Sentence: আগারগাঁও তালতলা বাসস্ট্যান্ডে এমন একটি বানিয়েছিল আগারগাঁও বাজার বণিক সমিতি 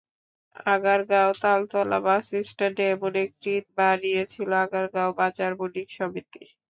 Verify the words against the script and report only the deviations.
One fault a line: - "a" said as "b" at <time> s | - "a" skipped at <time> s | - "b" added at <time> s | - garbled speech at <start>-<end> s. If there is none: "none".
none